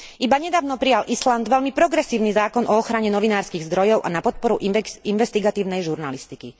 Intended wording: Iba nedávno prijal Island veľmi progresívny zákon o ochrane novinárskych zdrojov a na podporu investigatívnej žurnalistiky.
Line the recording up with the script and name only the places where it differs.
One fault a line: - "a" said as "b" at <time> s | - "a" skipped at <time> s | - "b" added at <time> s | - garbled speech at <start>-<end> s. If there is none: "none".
none